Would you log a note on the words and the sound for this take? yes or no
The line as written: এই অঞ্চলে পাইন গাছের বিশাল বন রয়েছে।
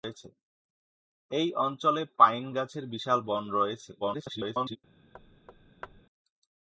yes